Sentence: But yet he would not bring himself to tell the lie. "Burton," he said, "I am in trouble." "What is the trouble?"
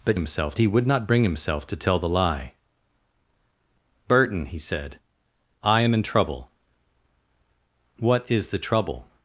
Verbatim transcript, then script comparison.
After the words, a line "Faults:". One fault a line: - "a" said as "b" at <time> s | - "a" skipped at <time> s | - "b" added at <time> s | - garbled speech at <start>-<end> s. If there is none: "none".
But himself he would not bring himself to tell the lie. "Burton," he said, "I am in trouble." "What is the trouble?"
Faults:
- "yet" said as "himself" at 0.1 s